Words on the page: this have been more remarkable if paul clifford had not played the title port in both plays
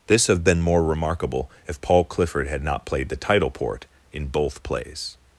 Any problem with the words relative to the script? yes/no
no